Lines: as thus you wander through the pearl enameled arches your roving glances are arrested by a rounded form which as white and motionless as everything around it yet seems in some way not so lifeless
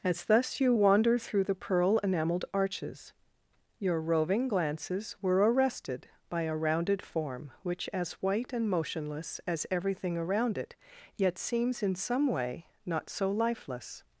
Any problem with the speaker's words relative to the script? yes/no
yes